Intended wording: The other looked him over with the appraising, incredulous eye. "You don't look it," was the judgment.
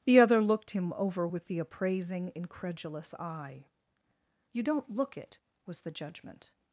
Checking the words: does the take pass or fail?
pass